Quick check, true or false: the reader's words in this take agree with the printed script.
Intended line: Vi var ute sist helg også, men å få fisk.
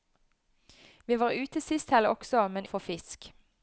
true